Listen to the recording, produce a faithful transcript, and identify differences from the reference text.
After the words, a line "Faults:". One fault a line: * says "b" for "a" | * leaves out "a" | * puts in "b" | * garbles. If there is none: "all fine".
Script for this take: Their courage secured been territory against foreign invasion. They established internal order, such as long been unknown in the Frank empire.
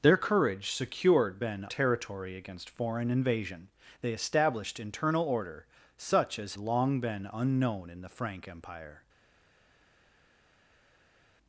Their courage secured been territory against foreign invasion. They established internal order, such as long been unknown in the Frank empire.
Faults:
all fine